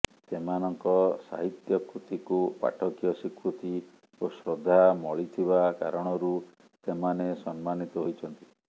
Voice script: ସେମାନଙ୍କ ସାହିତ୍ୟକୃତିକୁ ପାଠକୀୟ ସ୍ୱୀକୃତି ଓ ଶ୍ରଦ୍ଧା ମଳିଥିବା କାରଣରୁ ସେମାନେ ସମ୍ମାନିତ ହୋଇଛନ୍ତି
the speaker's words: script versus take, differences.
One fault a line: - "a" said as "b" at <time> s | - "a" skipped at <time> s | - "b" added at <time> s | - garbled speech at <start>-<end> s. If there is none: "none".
none